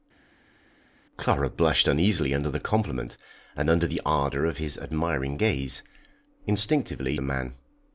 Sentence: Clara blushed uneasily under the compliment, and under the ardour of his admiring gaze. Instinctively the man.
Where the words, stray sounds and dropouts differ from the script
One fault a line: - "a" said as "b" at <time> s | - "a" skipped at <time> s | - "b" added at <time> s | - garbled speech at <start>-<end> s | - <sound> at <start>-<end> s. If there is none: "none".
none